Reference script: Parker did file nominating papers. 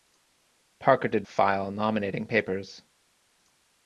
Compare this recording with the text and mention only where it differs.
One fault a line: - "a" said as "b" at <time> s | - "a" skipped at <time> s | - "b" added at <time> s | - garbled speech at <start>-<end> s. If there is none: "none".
none